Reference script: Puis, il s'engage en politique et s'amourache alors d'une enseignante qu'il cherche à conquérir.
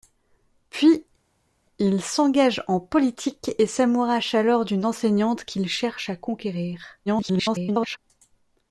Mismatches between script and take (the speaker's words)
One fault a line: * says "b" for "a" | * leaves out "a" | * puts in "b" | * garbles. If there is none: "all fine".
* garbles